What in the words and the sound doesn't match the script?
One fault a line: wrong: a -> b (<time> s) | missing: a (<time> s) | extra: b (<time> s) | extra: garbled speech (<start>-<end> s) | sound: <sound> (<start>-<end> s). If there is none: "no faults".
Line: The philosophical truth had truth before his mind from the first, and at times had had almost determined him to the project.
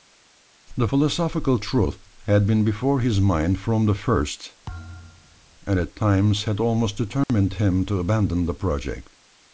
wrong: truth -> been (2.4 s)
sound: thud (4.7-5.4 s)
missing: had (6.6 s)
sound: dropout (7.2-7.3 s)
extra: abandon (8.0 s)